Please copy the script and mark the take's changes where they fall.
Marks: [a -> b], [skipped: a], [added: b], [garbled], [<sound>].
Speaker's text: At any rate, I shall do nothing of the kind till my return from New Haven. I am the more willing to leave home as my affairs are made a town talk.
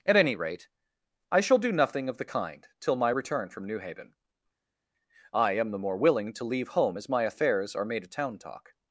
At any rate, I shall do nothing of the kind till my return from New Haven. I am the more willing to leave home as my affairs are made a town talk.